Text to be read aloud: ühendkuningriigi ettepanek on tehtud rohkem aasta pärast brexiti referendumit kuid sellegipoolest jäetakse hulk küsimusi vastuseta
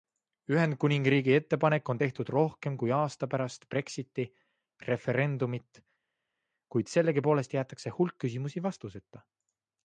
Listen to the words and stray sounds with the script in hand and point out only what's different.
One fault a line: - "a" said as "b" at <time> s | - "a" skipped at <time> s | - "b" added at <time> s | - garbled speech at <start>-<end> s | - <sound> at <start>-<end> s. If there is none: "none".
- "kui" added at 2.8 s